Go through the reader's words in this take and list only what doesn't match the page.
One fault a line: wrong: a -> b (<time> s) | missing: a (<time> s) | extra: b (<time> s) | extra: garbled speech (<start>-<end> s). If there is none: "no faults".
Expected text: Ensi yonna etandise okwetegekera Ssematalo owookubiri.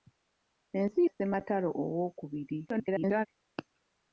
missing: yonna etandise okwetegekera (1.0 s)
extra: garbled speech (2.7-3.3 s)